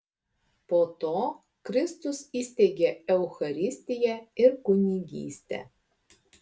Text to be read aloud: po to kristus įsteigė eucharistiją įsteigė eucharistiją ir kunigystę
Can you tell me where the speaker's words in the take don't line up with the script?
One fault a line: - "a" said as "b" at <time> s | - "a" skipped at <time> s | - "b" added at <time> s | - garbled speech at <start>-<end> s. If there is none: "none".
- "įsteigė eucharistiją" skipped at 4.2 s